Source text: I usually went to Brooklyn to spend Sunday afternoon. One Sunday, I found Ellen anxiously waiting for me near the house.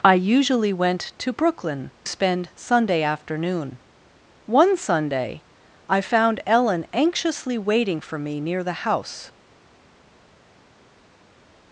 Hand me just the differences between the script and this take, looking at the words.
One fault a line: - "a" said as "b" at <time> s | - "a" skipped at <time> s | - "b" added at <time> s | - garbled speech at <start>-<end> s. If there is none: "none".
- "to" skipped at 1.9 s